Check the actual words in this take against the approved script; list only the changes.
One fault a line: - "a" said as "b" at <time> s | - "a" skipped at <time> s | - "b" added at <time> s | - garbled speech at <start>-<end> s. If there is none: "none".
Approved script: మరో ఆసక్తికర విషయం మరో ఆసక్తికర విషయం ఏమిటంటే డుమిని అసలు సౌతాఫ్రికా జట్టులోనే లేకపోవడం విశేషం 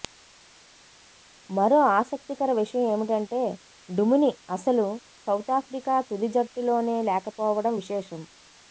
- "మరో ఆసక్తికర విషయం" skipped at 2.9 s
- "తుది" added at 6.1 s